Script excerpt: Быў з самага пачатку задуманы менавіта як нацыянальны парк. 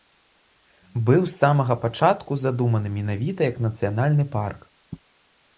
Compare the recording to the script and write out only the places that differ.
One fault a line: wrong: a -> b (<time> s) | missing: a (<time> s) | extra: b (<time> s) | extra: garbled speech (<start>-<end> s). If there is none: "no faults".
no faults